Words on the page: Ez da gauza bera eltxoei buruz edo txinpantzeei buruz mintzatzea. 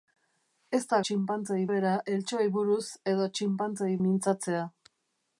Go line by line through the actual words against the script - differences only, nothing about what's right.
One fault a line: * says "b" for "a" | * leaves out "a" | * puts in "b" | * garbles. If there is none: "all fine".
* says "txinpantzeei" for "gauza"
* leaves out "buruz"